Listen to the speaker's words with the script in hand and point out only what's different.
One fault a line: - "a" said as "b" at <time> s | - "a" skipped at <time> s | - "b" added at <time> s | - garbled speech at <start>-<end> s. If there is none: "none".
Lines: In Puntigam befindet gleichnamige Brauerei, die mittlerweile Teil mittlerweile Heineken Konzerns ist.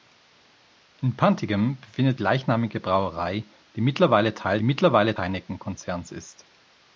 none